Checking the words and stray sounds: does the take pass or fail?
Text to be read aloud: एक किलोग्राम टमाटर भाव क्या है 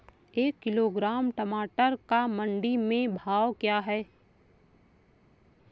fail